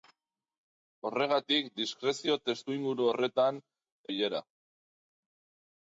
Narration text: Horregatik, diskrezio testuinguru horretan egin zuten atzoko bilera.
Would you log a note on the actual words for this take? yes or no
yes